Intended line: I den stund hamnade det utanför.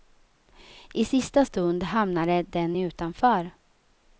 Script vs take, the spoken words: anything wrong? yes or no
yes